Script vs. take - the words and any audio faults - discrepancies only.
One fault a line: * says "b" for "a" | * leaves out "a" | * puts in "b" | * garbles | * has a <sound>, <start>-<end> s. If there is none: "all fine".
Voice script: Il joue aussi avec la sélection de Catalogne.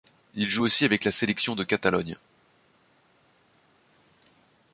all fine